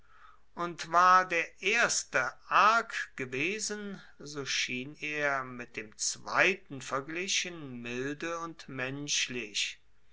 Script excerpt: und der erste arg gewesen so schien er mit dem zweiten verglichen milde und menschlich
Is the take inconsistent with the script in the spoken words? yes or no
yes